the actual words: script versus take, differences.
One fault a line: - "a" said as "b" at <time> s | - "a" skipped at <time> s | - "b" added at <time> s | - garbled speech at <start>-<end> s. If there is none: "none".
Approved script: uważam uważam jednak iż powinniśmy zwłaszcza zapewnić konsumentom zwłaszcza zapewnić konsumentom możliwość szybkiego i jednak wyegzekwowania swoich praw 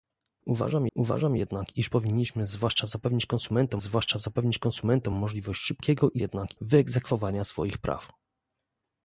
none